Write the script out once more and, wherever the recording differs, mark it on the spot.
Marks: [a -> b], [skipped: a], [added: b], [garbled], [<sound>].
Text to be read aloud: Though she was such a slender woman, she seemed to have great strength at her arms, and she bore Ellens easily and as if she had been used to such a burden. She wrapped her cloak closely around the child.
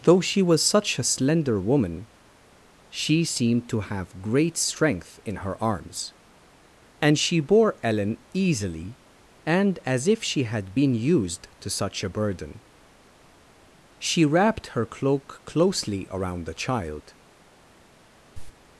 Though she was such a slender woman, she seemed to have great strength [at -> in] her arms, and she bore [Ellens -> Ellen] easily and as if she had been used to such a burden. She wrapped her cloak closely around the child. [cough]